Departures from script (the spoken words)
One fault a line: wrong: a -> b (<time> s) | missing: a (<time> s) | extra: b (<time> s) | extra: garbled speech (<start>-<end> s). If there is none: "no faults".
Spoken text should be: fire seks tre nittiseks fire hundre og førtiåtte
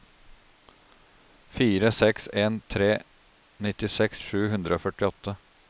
extra: en (2.4 s)
wrong: fire -> sju (4.3 s)